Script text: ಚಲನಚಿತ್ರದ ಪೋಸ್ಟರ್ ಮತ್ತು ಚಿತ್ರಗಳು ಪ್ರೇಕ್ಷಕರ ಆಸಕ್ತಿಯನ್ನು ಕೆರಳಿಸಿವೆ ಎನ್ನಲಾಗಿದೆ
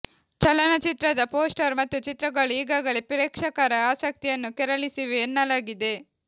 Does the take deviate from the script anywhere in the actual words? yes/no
yes